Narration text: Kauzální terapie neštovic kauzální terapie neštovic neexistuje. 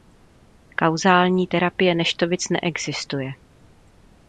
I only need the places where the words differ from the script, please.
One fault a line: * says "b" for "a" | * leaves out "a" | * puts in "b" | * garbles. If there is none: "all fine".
* leaves out "kauzální terapie neštovic"